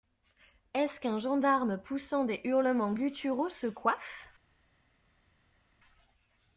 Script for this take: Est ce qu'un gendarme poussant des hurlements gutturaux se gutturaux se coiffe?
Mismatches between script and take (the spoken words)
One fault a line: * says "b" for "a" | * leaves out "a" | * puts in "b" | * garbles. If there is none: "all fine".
* leaves out "gutturaux se"